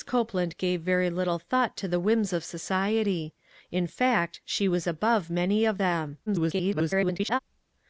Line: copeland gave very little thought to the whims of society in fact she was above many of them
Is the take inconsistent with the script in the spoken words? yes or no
yes